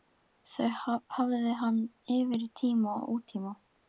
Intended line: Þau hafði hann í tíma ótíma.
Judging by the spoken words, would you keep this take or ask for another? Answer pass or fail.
fail